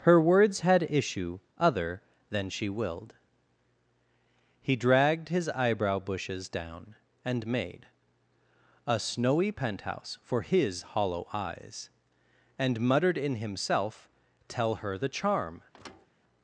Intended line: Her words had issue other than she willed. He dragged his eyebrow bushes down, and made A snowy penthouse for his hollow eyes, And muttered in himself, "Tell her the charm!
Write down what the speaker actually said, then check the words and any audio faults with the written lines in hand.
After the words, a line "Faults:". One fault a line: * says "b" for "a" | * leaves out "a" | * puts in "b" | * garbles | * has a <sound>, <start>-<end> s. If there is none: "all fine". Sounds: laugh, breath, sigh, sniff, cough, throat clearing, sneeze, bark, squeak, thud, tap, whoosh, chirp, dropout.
Her words had issue other than she willed. He dragged his eyebrow bushes down, and made A snowy penthouse for his hollow eyes, And muttered in himself, "Tell her the charm!
Faults:
* has a thud, 15.7-16.1 s